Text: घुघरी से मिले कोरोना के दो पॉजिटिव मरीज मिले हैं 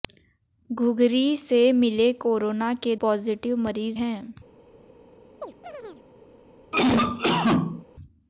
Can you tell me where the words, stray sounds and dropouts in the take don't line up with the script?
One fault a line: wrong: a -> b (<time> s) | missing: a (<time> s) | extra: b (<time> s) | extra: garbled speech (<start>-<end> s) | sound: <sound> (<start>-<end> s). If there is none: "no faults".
missing: दो (3.0 s)
missing: मिले (4.0 s)
sound: chirp (5.4-6.1 s)
sound: cough (6.7-7.8 s)